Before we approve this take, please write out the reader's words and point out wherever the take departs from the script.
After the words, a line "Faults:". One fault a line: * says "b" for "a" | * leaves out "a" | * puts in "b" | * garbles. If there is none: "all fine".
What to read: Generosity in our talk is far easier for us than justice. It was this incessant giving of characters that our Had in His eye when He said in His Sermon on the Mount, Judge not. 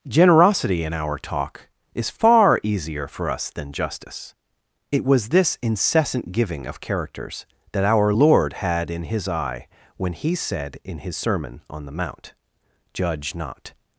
Generosity in our talk is far easier for us than justice. It was this incessant giving of characters that our Lord had in His eye when He said in His Sermon on the Mount, Judge not.
Faults:
* puts in "Lord"